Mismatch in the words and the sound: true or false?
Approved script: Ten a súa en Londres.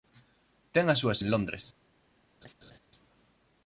true